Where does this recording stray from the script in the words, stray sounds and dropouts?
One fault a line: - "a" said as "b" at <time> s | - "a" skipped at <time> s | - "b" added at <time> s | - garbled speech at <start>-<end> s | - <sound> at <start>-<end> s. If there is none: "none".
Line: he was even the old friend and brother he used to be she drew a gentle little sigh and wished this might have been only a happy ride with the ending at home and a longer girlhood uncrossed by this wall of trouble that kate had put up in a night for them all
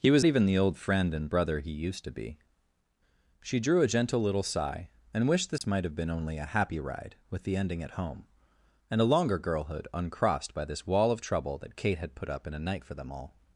- dropout at 5.6-5.6 s